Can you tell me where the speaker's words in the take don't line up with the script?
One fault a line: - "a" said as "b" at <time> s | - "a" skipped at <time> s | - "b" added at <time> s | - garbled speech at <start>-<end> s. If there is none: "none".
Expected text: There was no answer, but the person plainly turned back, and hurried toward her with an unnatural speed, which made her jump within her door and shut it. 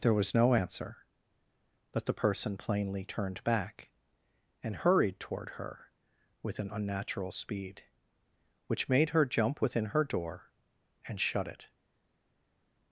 none